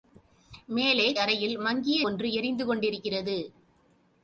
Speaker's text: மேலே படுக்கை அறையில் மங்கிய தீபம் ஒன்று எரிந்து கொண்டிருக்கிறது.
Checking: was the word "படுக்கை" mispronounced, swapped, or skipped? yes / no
yes